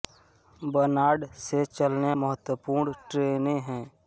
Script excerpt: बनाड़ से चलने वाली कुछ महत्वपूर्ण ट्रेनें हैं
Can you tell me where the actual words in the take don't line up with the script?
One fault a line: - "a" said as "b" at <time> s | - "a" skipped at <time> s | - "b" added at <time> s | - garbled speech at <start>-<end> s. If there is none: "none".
- "वाली कुछ" skipped at 2.1 s